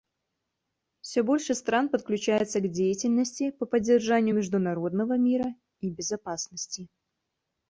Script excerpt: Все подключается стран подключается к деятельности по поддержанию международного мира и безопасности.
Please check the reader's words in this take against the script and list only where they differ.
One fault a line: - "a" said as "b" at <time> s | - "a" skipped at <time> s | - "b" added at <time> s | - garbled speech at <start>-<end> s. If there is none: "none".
- "подключается" said as "больше" at 1.2 s